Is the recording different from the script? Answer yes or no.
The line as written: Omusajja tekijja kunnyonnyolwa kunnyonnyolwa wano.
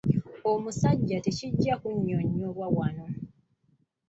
yes